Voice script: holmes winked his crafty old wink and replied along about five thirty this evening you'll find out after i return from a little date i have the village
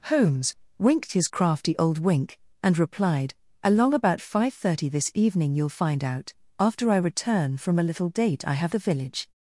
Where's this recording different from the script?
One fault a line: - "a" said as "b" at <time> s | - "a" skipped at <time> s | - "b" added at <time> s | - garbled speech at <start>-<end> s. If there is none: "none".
none